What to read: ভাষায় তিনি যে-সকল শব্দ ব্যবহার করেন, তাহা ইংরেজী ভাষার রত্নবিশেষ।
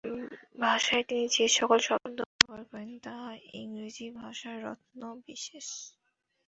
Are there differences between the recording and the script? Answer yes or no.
no